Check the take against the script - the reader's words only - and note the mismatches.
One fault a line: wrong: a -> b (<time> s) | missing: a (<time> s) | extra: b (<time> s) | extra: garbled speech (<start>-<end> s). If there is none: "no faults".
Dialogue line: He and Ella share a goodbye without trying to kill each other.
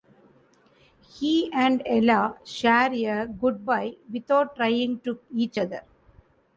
missing: kill (5.2 s)